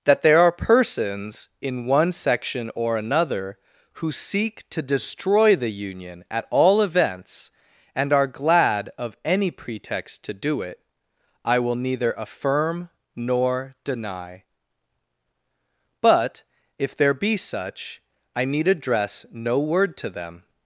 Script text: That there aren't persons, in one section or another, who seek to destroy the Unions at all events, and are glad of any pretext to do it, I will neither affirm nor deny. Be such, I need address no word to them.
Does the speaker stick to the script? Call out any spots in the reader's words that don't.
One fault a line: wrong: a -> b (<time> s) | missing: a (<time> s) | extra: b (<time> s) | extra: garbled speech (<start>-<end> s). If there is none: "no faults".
wrong: aren't -> are (0.4 s)
wrong: Unions -> Union (5.7 s)
extra: But if there (16.0 s)